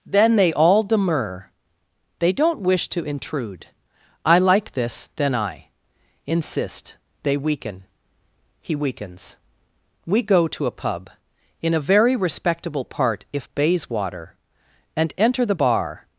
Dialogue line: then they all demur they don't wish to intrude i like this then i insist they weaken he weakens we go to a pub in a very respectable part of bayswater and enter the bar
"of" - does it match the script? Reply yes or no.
no